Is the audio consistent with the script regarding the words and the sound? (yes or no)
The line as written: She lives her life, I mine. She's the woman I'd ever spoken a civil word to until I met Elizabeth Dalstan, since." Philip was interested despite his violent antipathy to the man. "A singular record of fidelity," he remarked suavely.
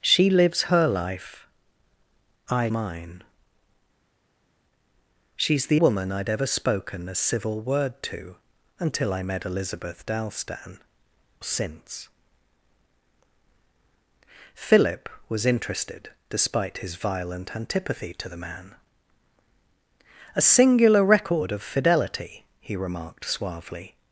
yes